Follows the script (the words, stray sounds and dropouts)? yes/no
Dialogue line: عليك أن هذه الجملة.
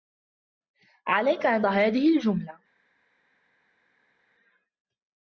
yes